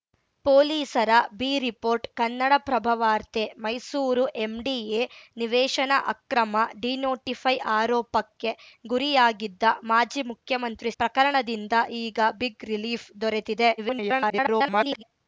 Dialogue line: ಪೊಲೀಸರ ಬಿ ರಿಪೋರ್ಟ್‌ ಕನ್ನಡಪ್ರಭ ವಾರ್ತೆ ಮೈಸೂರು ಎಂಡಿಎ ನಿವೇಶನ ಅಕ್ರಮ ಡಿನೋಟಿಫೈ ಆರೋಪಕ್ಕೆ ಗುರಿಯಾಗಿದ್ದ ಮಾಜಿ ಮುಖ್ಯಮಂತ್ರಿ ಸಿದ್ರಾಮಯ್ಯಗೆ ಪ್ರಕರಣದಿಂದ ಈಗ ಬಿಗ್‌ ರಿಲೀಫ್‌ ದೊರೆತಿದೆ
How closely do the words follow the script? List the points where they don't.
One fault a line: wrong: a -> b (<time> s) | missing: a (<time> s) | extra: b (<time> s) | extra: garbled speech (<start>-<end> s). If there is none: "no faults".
missing: ಸಿದ್ರಾಮಯ್ಯಗೆ (10.9 s)
extra: garbled speech (13.8-15.0 s)